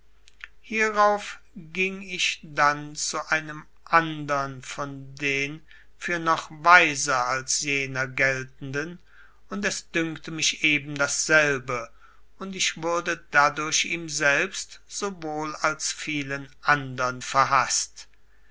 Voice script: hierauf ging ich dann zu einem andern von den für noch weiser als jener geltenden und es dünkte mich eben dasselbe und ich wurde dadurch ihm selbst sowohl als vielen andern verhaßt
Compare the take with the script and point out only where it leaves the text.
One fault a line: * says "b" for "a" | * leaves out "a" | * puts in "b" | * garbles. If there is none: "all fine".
all fine